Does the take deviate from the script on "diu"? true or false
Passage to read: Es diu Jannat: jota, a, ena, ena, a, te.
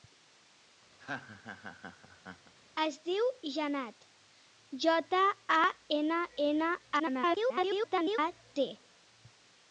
false